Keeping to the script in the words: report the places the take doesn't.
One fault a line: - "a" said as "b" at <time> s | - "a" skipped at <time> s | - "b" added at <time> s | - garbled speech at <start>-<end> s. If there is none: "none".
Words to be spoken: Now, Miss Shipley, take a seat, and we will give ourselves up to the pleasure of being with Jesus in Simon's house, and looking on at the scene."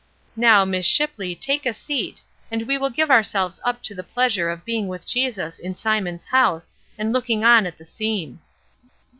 none